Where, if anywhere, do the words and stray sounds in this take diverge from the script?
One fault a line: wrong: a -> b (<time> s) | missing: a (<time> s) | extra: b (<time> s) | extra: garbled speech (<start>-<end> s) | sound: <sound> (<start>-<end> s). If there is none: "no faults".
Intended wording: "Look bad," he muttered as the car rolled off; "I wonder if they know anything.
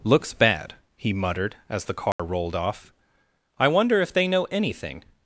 wrong: Look -> Looks (0.0 s)
sound: dropout (2.1-2.2 s)